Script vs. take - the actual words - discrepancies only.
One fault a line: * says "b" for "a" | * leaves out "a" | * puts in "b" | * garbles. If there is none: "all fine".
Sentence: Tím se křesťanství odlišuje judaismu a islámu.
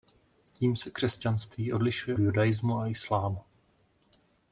all fine